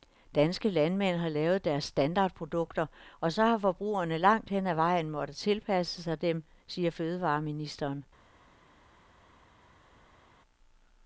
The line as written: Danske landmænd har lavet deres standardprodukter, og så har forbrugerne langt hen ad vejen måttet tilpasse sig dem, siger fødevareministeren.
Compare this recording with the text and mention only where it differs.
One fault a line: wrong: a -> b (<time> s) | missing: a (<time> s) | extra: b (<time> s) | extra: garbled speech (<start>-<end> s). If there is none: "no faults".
no faults